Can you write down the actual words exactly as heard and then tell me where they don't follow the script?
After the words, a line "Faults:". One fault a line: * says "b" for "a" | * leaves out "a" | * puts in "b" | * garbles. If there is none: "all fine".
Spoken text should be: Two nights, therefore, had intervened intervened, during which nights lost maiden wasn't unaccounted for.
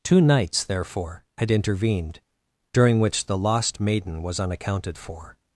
Two nights, therefore, had intervened, during which the lost maiden was unaccounted for.
Faults:
* leaves out "intervened"
* says "the" for "nights"
* says "was" for "wasn't"